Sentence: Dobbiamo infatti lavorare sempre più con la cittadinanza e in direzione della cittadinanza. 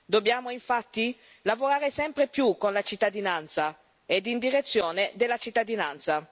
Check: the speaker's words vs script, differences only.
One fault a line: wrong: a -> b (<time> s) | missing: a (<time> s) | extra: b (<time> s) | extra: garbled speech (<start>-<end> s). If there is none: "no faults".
no faults